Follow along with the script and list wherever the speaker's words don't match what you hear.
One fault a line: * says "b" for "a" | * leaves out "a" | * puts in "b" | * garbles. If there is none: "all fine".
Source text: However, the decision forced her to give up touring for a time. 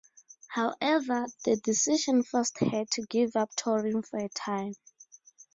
all fine